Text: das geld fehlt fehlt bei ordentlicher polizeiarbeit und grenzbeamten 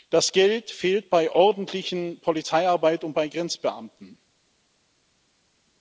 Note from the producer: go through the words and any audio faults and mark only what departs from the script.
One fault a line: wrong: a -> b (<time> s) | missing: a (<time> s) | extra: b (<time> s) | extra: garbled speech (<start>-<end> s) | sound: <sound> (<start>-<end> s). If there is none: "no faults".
missing: fehlt (1.1 s)
extra: bei (3.1 s)